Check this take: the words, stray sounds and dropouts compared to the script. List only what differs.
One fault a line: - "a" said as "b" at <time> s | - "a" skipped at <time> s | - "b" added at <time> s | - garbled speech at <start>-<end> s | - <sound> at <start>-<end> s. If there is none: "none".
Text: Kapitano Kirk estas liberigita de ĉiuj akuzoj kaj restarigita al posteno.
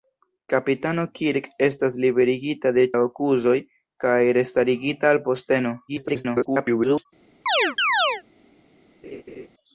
- "ĉiuj" skipped at 2.9 s
- garbled speech at 5.9-7.1 s
- chirp at 7.5-8.2 s
- laugh at 9.0-9.5 s